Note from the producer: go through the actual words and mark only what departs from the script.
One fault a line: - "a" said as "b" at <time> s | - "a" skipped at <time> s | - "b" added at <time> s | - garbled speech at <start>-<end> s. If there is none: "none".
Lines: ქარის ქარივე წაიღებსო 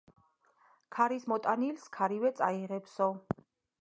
- "მოტანილის" added at 1.3 s